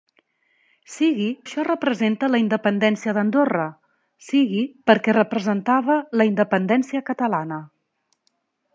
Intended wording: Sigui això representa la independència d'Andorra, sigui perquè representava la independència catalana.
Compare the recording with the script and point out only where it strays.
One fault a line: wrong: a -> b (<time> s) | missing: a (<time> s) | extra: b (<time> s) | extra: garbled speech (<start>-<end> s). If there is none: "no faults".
no faults